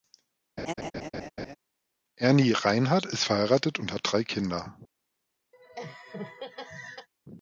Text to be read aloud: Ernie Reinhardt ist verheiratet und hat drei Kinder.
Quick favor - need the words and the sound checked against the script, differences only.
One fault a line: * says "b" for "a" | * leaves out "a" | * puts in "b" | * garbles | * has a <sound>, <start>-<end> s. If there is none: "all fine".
* has a laugh, 0.6-1.6 s
* has a laugh, 5.5-7.1 s